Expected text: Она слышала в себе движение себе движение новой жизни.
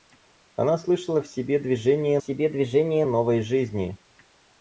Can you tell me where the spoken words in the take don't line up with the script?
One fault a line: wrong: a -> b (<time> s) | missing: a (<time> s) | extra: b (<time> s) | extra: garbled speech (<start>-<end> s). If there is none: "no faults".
no faults